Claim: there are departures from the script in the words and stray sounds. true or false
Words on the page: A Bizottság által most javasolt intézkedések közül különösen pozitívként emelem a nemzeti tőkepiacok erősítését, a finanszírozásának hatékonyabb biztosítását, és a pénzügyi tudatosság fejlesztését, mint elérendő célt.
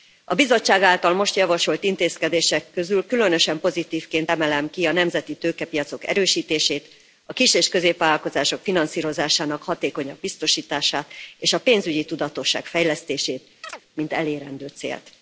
true